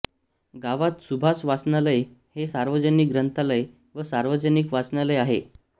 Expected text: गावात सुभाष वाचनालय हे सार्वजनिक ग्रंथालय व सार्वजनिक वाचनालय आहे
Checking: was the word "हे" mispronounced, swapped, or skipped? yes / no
no